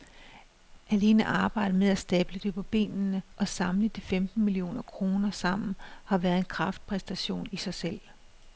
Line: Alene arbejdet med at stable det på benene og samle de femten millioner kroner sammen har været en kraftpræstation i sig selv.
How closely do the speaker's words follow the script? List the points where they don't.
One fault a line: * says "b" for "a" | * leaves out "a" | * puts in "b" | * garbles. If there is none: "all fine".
all fine